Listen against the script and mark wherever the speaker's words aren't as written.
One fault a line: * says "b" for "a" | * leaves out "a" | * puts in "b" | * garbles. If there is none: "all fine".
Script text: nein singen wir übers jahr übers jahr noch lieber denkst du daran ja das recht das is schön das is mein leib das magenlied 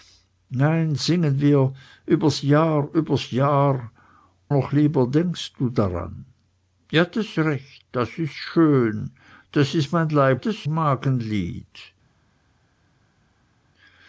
all fine